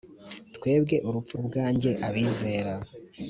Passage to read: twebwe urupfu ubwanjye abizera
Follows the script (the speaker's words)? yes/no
yes